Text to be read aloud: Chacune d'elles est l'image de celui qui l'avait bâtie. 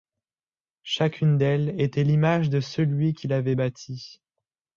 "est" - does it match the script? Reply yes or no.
no